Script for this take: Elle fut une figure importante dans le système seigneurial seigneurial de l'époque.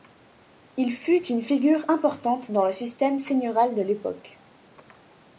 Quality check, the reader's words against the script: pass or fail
fail